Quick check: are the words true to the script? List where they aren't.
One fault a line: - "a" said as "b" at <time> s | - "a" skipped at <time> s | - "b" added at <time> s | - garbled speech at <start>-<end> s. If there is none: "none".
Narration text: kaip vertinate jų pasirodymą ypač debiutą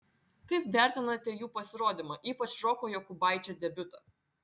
- "roko jokubaičio" added at 2.7 s